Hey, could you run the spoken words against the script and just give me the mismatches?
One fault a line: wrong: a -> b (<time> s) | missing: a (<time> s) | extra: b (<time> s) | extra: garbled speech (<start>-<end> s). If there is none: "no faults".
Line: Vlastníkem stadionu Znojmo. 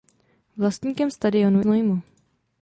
no faults